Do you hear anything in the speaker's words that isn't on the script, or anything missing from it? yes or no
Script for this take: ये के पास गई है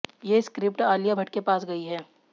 yes